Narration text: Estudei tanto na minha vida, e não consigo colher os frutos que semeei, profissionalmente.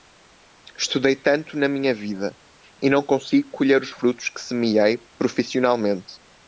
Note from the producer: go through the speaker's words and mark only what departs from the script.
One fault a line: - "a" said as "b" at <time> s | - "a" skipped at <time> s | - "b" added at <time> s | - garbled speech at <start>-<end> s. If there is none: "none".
none